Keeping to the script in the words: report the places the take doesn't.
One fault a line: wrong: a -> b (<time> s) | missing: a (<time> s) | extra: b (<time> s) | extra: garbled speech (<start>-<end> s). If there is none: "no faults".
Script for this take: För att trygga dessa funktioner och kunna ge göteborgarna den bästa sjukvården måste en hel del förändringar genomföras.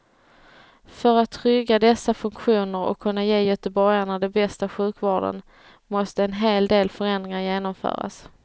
no faults